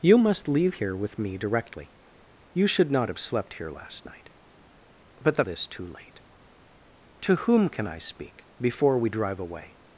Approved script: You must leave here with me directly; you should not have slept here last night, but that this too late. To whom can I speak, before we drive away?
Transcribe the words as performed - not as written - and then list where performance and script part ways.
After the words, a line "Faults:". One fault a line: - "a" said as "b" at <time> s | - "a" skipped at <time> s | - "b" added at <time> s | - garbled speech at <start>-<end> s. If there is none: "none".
You must leave here with me directly; you should not have slept here last night, but that this too late. To whom can I speak, before we drive away?
Faults:
none